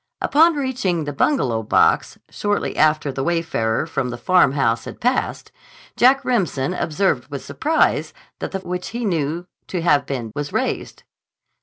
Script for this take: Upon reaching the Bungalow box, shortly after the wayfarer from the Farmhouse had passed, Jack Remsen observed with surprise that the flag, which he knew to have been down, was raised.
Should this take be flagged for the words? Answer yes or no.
yes